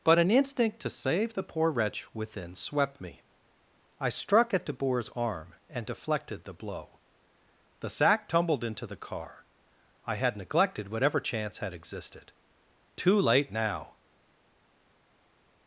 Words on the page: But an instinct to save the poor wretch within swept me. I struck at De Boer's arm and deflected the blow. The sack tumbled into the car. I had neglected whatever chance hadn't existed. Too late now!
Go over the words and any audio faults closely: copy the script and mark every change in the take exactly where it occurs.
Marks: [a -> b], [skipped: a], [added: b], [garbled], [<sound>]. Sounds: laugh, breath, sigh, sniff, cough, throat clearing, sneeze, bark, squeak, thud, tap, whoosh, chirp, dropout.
But an instinct to save the poor wretch within swept me. I struck at De Boer's arm and deflected the blow. The sack tumbled into the car. I had neglected whatever chance [hadn't -> had] existed. Too late now!